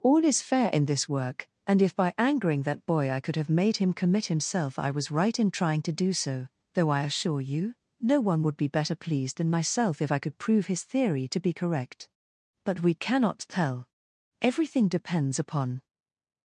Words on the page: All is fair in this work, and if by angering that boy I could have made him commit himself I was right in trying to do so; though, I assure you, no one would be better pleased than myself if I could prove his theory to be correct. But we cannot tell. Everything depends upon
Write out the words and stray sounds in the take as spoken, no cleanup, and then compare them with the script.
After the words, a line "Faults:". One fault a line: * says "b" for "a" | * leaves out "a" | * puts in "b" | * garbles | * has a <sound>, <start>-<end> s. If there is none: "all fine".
All is fair in this work, and if by angering that boy I could have made him commit himself I was right in trying to do so; though, I assure you, no one would be better pleased than myself if I could prove his theory to be correct. But we cannot tell. Everything depends upon
Faults:
all fine